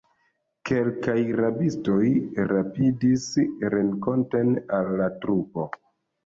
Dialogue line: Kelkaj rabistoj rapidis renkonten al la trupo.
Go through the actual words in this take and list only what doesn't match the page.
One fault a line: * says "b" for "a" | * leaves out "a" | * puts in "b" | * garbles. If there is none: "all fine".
all fine